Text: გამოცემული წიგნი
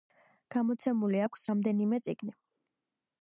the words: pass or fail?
fail